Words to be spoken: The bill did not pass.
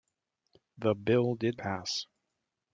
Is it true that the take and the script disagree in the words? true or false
true